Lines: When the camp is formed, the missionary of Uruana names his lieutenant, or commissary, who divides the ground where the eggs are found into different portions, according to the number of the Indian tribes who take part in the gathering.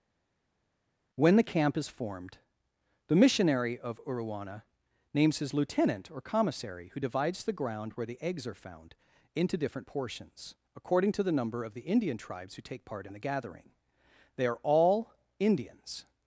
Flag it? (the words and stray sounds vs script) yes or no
yes